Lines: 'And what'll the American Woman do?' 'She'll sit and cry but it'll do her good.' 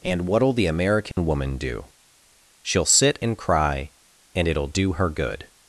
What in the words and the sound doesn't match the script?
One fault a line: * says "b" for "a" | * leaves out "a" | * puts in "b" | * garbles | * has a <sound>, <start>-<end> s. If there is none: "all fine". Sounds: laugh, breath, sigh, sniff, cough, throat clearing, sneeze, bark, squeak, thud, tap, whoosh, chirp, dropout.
* has a dropout, 1.1-1.2 s
* says "and" for "but"